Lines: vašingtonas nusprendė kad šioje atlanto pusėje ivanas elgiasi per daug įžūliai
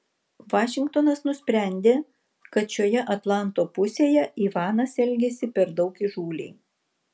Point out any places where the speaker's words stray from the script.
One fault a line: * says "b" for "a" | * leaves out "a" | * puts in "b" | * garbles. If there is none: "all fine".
all fine